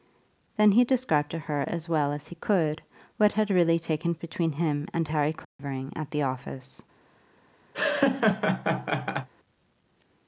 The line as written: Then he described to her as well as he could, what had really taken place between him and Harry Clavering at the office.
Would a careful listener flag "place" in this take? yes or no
yes